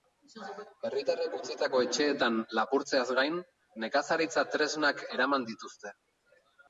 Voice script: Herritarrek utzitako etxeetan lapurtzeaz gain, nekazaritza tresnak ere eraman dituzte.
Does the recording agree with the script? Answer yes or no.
no